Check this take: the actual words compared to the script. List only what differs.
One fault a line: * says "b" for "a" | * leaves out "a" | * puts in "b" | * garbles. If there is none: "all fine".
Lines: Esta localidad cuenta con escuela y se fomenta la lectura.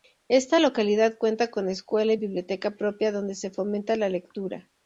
* puts in "biblioteca propia donde"